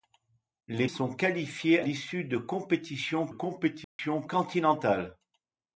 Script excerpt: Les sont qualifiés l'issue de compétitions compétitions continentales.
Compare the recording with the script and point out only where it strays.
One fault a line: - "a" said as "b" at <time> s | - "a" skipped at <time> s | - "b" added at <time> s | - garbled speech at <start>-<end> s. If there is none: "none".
none